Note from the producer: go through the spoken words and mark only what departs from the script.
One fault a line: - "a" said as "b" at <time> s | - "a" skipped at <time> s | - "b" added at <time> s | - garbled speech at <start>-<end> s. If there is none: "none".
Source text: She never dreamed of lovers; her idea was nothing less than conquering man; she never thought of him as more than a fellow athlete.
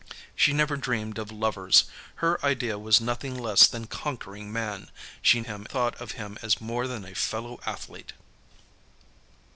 - "never" said as "him" at 5.4 s